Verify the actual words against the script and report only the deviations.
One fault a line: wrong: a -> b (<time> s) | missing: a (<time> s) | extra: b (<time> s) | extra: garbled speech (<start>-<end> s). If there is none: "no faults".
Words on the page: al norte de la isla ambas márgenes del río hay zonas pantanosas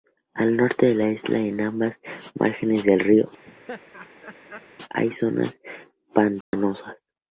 extra: en (1.4 s)